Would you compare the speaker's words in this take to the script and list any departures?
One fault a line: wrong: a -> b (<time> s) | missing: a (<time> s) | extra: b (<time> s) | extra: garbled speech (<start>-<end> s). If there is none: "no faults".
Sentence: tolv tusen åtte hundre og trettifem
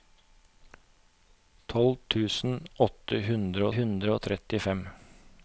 extra: hundre (3.8 s)